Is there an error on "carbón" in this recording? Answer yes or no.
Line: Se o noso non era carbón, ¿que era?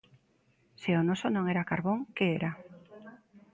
no